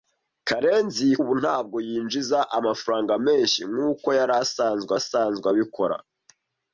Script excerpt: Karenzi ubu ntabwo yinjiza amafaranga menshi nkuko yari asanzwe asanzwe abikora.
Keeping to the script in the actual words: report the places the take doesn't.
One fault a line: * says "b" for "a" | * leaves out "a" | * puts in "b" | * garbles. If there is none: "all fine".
all fine